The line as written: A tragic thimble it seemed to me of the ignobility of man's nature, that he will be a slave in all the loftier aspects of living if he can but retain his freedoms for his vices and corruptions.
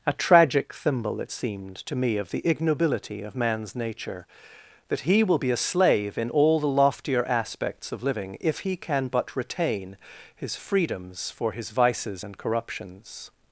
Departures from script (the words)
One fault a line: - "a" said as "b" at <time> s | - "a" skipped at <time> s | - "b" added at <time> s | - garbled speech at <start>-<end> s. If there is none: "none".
none